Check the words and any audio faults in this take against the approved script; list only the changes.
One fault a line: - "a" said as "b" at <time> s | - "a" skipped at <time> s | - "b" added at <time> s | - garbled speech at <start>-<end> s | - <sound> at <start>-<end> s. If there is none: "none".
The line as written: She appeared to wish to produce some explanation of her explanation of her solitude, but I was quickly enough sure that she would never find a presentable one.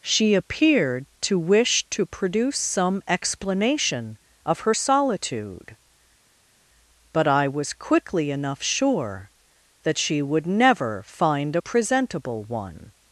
- "explanation of her" skipped at 4.7 s